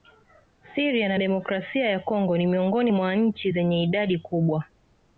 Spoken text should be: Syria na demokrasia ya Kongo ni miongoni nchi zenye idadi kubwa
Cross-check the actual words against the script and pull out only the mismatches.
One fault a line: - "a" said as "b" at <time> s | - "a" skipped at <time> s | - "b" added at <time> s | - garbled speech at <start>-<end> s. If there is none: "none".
- "mwa" added at 2.9 s